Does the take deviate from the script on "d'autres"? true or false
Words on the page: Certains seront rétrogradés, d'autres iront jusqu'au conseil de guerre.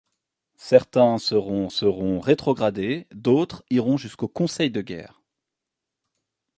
false